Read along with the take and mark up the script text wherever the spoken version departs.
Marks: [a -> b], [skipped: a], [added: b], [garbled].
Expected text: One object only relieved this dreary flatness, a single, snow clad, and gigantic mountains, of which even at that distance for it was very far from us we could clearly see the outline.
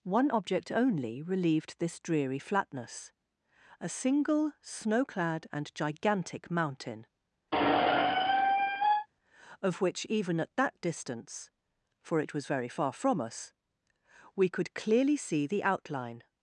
One object only relieved this dreary flatness, a single, snow clad, and gigantic [mountains, -> mountain] of which even at that distance for it was very far from us we could clearly see the outline.